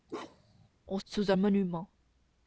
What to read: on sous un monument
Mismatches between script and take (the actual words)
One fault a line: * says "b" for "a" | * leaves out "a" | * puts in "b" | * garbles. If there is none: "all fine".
all fine